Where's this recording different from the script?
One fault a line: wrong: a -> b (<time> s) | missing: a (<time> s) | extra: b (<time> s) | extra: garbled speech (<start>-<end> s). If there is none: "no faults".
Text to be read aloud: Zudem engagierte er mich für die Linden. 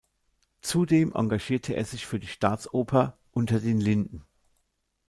wrong: mich -> sich (1.9 s)
extra: Staatsoper Unter den (2.2 s)